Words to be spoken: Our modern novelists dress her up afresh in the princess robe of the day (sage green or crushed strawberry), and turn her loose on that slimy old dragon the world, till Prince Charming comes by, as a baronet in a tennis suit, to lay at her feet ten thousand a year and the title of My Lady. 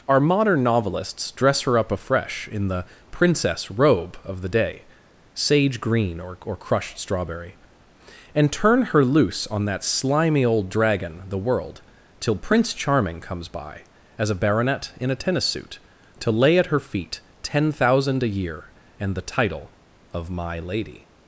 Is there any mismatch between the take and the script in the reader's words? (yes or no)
yes